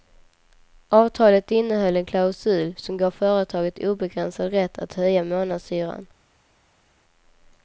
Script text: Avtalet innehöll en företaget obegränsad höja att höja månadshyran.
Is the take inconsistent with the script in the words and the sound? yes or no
yes